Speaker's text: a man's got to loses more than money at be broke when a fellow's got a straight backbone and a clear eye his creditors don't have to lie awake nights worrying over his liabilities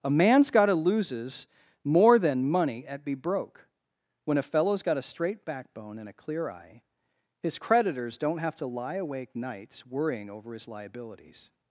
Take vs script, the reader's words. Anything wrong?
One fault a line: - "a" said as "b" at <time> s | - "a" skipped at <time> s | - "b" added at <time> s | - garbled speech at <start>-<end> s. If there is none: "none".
none